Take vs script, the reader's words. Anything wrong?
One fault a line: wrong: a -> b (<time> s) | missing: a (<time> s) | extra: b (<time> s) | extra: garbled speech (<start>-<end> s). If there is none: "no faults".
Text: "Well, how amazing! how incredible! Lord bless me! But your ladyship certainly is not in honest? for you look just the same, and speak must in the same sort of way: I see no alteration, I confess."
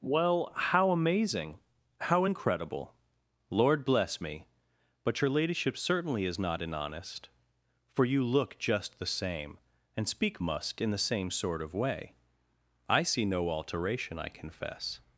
no faults